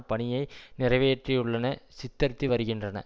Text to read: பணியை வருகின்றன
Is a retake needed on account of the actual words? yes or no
yes